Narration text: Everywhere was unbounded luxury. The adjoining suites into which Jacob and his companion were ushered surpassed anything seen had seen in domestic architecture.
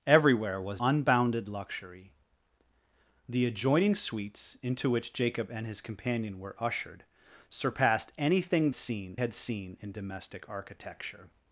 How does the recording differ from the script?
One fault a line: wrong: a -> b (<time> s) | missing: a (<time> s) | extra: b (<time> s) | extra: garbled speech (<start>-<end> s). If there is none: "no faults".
no faults